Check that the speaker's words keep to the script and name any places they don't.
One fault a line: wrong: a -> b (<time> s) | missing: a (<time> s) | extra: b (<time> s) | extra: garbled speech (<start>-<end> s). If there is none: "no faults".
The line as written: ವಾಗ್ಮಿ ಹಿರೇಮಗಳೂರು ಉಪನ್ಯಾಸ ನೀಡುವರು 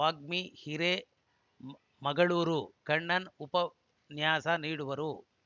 extra: ಕಣ್ಣನ್ (2.8 s)